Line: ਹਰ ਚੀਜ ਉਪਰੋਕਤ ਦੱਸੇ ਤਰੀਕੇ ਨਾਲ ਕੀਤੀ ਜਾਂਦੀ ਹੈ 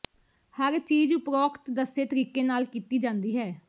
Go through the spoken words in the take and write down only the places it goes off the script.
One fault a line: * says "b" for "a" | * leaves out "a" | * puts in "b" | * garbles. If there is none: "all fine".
all fine